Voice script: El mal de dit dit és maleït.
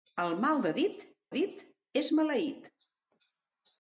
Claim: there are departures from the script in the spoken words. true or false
false